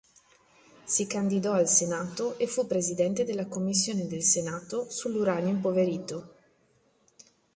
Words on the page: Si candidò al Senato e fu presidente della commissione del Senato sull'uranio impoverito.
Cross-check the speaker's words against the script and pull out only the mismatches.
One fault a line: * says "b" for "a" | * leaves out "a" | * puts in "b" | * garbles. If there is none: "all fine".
all fine